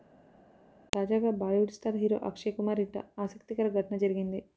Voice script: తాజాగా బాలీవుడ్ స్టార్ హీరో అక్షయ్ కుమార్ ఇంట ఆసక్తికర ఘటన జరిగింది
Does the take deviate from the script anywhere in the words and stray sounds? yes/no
no